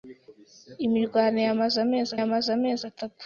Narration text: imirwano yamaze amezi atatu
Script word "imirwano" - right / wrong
right